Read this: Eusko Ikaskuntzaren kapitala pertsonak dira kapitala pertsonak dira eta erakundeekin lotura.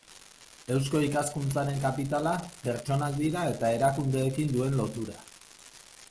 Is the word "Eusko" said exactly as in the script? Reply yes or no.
yes